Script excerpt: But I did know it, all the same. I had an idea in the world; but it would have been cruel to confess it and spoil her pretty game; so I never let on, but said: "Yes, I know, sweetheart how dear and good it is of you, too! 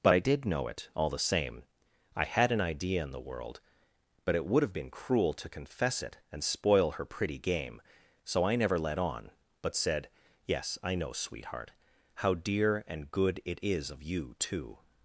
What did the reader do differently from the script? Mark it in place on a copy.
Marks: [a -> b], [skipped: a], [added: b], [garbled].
But I did know it, all the same. I had an idea in the world; but it would have been cruel to confess it and spoil her pretty game; so I never let on, but said: "Yes, I know, sweetheart how dear and good it is of you, too!